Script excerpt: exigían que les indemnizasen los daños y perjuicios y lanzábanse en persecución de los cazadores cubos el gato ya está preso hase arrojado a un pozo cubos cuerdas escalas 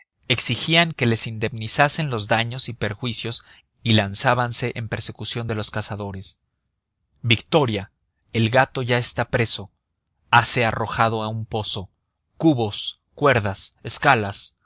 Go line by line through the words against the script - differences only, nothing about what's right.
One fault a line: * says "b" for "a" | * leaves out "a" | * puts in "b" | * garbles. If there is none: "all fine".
* says "victoria" for "cubos"